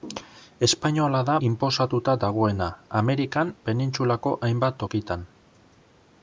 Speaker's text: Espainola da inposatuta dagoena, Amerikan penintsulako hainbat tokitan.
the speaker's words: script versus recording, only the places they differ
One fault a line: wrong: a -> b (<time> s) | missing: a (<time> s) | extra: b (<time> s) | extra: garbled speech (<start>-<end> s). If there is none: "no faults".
no faults